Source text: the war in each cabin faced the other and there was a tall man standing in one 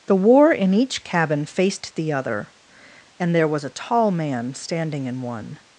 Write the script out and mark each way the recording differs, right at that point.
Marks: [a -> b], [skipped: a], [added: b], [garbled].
the war in each cabin faced the other and there was a tall man standing in one